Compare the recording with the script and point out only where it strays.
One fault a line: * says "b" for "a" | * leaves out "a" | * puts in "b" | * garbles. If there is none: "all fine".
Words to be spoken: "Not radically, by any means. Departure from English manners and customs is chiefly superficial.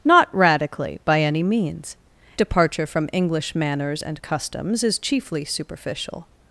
all fine